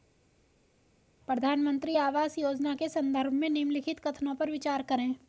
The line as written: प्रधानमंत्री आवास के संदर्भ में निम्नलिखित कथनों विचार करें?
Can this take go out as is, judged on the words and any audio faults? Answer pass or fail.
fail